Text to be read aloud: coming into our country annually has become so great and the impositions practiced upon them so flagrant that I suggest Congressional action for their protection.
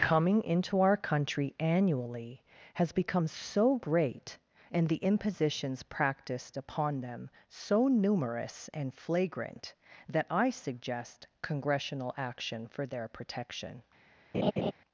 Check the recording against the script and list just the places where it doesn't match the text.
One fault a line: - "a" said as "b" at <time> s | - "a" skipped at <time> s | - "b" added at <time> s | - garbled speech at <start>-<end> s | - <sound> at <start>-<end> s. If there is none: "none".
- "numerous and" added at 7.9 s
- laugh at 14.3-14.7 s